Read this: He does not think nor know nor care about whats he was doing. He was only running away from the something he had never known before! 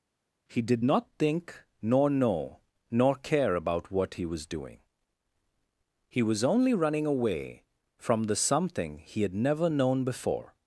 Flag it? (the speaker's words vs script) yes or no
yes